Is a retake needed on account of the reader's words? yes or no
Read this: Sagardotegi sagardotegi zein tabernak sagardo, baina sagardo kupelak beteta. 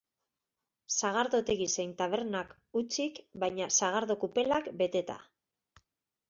yes